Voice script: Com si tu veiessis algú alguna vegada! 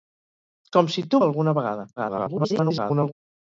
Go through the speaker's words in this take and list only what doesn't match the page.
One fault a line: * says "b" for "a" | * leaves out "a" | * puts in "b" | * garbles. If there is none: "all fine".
* leaves out "veiessis algú"
* garbles